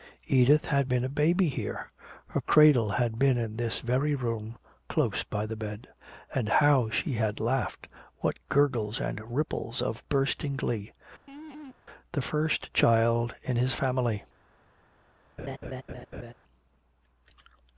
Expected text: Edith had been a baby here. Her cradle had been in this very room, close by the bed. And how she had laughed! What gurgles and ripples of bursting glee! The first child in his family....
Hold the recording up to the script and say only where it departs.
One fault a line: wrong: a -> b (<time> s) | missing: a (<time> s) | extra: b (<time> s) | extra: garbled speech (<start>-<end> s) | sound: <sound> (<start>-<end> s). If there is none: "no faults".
sound: laugh (11.3-11.8 s)
sound: laugh (15.4-16.3 s)